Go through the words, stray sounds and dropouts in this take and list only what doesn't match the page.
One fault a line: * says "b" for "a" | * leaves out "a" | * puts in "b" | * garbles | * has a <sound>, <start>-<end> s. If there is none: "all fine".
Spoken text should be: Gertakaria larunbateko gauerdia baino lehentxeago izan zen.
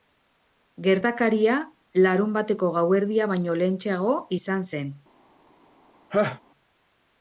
* has a laugh, 6.1-6.4 s